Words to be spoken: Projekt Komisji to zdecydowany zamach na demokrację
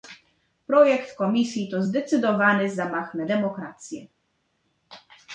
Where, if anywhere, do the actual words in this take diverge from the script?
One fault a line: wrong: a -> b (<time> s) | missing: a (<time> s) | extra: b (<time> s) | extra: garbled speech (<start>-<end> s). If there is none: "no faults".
no faults